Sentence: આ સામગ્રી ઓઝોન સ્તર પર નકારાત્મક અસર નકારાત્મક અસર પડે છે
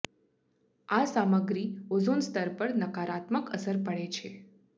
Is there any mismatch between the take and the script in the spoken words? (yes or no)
yes